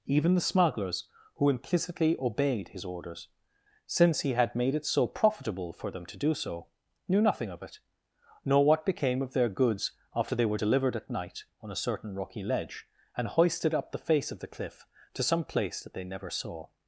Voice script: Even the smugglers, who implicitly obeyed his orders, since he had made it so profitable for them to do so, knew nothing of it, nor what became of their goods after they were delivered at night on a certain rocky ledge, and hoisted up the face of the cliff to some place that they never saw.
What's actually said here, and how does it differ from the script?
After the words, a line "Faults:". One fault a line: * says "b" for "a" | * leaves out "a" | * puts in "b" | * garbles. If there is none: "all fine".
Even the smugglers, who implicitly obeyed his orders, since he had made it so profitable for them to do so, knew nothing of it, nor what became of their goods after they were delivered at night on a certain rocky ledge, and hoisted up the face of the cliff to some place that they never saw.
Faults:
all fine